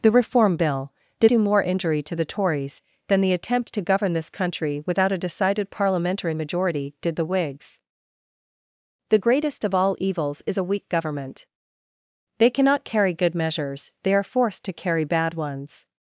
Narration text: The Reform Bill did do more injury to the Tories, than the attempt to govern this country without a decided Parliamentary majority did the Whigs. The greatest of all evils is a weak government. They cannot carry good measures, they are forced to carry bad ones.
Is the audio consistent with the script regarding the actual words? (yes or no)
yes